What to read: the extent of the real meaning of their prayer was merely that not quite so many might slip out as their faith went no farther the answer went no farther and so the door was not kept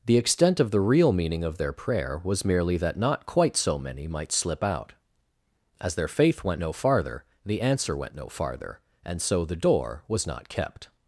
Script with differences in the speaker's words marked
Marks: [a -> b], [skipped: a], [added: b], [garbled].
the extent of the real meaning of their prayer was merely that not quite so many might slip out as their faith went no farther the answer went no farther and so the door was not kept